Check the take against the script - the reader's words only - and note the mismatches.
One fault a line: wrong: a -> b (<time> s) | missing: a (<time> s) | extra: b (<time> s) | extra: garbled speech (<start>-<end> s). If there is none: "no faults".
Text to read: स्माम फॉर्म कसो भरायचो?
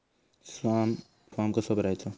no faults